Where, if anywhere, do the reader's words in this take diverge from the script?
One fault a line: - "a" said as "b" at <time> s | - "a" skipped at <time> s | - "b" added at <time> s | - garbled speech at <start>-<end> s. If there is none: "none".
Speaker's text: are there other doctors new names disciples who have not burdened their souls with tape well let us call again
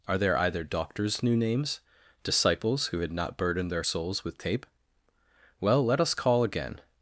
- "other" said as "either" at 0.4 s
- "have" said as "had" at 3.0 s